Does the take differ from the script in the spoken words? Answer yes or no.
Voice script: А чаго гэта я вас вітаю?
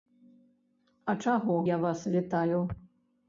yes